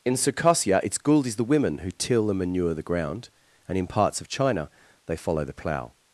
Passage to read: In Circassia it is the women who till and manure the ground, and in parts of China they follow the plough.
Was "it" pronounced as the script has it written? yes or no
no